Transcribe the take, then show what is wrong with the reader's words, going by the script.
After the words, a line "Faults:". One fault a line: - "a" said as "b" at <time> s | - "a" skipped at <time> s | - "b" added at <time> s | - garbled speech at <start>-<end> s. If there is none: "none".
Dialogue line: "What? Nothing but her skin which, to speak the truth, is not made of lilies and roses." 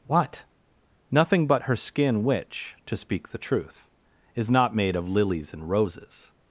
"What? Nothing but her skin which, to speak the truth, is not made of lilies and roses."
Faults:
none